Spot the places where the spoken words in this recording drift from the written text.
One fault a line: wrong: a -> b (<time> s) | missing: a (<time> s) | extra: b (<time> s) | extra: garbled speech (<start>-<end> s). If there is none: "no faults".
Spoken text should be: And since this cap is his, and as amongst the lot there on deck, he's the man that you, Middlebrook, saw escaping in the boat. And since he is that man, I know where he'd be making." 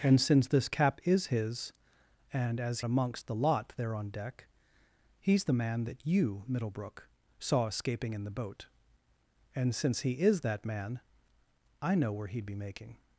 no faults